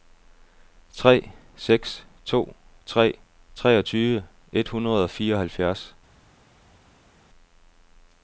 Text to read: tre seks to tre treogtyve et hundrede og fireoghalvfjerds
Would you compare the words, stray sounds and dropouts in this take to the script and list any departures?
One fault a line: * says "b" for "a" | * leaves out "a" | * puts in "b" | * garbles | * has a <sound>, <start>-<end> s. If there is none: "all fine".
all fine